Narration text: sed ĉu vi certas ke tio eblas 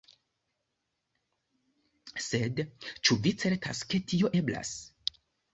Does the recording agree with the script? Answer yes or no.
yes